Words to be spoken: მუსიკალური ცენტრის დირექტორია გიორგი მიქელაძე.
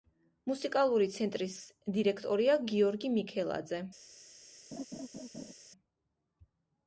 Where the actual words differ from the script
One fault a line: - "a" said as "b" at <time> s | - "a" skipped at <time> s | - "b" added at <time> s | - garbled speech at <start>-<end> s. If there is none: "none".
none